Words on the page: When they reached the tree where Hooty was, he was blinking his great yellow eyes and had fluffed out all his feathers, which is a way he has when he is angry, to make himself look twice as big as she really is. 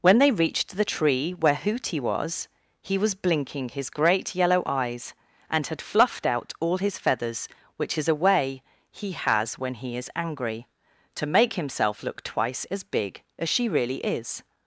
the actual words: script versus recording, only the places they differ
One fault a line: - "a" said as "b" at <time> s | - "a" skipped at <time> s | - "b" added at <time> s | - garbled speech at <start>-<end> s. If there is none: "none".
none